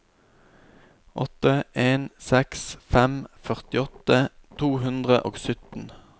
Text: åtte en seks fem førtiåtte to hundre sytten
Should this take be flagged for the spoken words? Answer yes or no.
yes